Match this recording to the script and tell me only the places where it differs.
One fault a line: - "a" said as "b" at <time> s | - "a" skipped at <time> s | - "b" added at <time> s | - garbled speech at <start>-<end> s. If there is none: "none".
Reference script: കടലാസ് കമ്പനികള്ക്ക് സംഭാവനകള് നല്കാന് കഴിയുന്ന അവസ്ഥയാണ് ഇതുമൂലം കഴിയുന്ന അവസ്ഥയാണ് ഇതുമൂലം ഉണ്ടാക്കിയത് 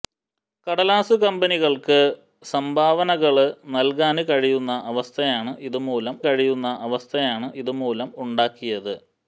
none